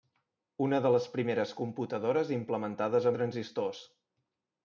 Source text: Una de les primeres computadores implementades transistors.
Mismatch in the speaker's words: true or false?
false